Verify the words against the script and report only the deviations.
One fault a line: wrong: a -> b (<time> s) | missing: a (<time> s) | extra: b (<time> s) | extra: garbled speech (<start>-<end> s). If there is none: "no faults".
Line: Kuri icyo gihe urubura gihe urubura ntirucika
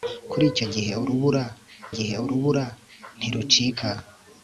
no faults